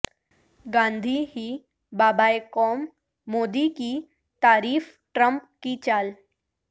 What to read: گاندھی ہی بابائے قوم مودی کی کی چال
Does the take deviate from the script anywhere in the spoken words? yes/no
yes